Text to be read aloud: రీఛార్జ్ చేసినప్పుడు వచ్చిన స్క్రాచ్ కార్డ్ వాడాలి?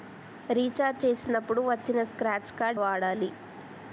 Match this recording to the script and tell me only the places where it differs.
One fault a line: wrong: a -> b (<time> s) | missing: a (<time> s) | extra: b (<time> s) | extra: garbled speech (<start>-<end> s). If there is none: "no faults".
no faults